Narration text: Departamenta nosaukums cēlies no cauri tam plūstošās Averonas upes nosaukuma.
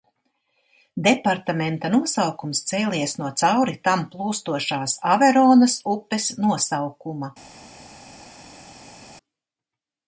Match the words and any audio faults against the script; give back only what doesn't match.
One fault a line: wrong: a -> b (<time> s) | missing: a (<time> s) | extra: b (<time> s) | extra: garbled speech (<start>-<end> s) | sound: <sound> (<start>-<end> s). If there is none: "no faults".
no faults